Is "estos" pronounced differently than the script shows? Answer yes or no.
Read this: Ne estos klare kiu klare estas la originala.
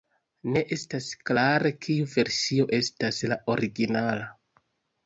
yes